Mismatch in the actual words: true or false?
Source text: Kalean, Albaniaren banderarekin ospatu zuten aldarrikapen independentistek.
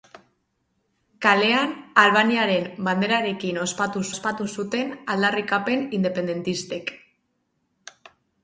true